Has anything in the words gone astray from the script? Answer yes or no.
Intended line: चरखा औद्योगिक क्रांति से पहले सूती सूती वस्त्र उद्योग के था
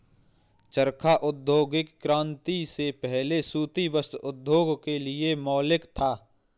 yes